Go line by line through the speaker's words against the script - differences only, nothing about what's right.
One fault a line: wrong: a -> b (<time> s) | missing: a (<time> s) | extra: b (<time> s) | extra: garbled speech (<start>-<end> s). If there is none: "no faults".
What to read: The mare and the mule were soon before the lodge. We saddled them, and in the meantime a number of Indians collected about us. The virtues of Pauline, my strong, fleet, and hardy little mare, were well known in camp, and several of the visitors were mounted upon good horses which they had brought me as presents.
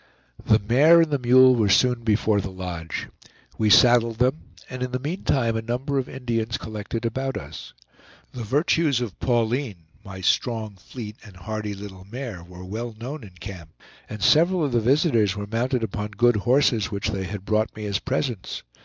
no faults